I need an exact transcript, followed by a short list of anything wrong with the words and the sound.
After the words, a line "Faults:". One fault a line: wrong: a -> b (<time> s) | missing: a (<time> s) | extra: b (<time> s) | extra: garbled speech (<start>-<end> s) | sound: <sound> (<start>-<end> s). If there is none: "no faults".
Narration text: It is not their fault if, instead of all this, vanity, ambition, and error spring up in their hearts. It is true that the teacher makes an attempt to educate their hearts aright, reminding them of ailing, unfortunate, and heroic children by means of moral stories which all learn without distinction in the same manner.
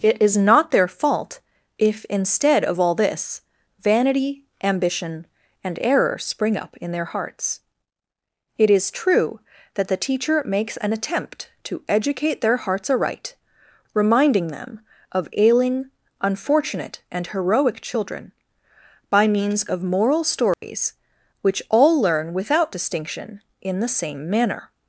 It is not their fault if, instead of all this, vanity, ambition, and error spring up in their hearts. It is true that the teacher makes an attempt to educate their hearts aright, reminding them of ailing, unfortunate, and heroic children by means of moral stories which all learn without distinction in the same manner.
Faults:
sound: dropout (20.5-20.6 s)